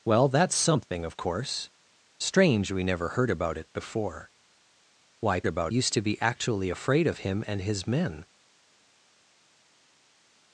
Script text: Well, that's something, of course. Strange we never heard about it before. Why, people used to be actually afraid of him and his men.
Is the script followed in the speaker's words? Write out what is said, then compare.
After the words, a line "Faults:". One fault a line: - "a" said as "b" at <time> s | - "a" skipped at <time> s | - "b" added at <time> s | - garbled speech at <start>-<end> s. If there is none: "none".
Well, that's something, of course. Strange we never heard about it before. Why, about used to be actually afraid of him and his men.
Faults:
- "people" said as "about" at 5.5 s